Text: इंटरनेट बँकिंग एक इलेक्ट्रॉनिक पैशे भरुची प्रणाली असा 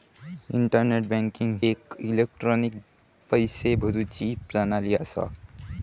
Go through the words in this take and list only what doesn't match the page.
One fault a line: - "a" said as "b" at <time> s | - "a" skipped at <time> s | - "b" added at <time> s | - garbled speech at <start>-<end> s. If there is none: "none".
none